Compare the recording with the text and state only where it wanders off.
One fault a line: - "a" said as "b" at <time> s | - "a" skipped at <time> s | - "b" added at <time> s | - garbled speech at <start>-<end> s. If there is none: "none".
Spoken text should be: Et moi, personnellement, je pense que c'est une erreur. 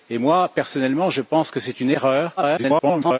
- garbled speech at 2.4-3.2 s